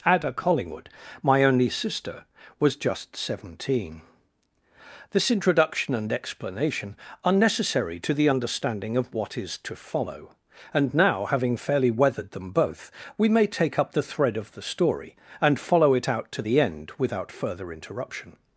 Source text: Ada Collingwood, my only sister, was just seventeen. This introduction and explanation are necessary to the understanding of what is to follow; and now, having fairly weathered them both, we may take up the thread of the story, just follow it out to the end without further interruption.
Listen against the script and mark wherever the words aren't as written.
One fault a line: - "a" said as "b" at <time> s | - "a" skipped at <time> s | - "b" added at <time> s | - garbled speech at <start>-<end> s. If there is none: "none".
- "just" said as "and" at 15.4 s